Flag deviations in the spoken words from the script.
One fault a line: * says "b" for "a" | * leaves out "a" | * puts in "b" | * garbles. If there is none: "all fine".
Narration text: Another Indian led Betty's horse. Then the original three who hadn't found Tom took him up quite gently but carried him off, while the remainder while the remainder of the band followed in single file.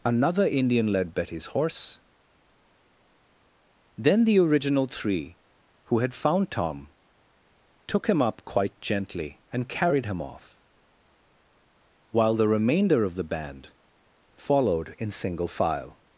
* says "had" for "hadn't"
* says "and" for "but"
* leaves out "while the remainder"